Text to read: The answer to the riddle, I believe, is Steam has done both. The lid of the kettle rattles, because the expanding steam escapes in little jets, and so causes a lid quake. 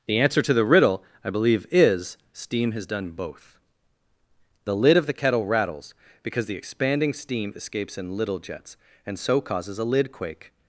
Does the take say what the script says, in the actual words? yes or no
yes